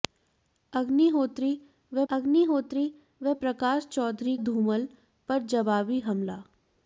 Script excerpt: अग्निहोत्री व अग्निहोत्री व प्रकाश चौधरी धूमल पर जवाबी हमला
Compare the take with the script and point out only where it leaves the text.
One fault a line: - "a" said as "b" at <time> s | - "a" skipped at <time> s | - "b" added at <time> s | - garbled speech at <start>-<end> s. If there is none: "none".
none